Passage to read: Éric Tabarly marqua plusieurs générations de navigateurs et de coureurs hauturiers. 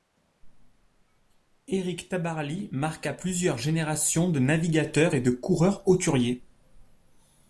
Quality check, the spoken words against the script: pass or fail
pass